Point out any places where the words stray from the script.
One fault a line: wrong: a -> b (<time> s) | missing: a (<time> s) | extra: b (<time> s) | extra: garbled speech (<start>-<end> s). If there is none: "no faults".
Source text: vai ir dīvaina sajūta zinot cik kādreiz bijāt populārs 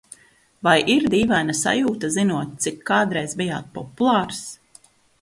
no faults